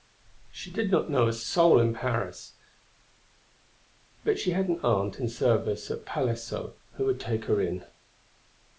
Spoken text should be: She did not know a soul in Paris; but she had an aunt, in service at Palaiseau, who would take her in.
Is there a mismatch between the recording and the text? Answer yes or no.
no